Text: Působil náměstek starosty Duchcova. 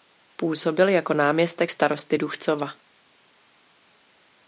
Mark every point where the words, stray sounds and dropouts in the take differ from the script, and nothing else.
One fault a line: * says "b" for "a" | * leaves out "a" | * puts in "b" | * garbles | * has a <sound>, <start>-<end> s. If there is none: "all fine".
* puts in "jako"